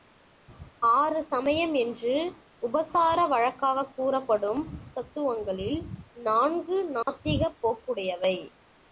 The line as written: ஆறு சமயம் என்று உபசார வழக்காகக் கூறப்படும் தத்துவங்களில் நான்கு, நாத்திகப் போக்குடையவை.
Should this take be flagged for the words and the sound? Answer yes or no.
yes